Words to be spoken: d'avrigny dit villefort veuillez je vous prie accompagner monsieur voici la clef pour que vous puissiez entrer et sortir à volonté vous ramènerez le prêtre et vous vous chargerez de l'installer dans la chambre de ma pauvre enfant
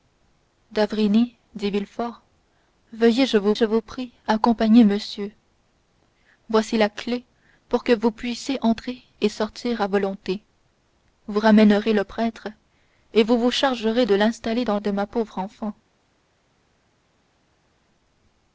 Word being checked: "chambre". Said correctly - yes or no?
no